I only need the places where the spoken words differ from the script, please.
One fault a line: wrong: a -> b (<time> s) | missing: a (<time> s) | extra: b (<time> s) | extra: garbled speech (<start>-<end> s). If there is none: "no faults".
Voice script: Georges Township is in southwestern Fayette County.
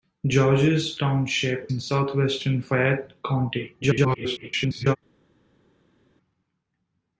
missing: is (1.7 s)
extra: garbled speech (3.8-5.0 s)